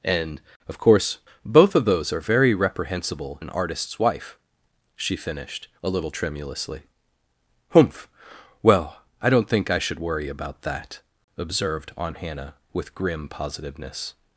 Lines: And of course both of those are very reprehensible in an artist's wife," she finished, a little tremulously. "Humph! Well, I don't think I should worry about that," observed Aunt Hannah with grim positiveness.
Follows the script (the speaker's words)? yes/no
no